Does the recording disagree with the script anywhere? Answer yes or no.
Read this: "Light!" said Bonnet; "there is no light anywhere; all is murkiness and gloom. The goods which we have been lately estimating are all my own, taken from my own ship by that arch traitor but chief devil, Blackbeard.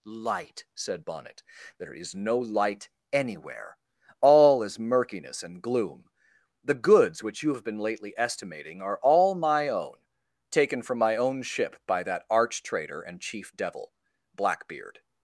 yes